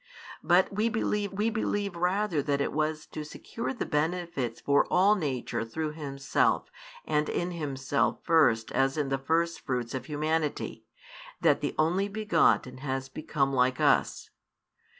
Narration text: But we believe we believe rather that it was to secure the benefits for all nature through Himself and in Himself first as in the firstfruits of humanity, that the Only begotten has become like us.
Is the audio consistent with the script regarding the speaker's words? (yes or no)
yes